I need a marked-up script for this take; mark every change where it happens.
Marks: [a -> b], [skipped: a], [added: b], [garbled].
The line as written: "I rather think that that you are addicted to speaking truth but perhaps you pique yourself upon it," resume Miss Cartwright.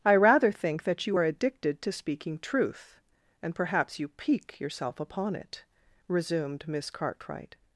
"I rather think that [skipped: that] you are addicted to speaking truth [but -> and] perhaps you pique yourself upon it," [resume -> resumed] Miss Cartwright.